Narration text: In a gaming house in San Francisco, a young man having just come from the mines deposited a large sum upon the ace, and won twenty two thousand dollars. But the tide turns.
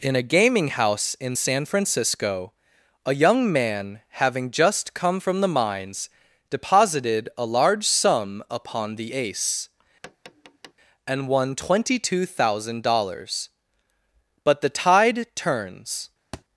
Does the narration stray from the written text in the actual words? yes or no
no